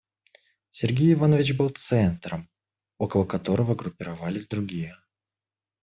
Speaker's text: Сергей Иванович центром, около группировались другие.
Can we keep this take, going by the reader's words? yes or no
no